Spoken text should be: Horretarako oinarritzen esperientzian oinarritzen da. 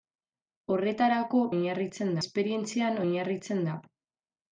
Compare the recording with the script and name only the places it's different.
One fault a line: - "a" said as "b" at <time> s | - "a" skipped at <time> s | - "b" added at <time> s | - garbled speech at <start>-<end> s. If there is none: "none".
none